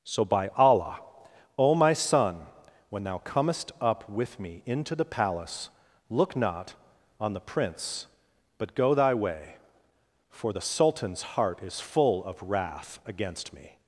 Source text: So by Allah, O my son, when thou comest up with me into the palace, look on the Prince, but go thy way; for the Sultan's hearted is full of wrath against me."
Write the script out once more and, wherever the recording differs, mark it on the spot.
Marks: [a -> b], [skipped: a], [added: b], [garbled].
So by Allah, O my son, when thou comest up with me into the palace, look [added: not] on the Prince, but go thy way; for the Sultan's [hearted -> heart] is full of wrath against me."